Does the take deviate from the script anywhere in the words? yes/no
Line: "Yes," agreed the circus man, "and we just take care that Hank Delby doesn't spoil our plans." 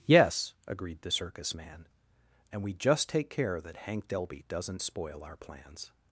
no